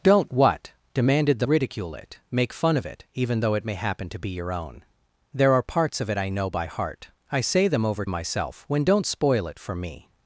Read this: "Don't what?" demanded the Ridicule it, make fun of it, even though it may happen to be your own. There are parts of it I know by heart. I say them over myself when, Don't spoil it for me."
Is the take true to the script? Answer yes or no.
yes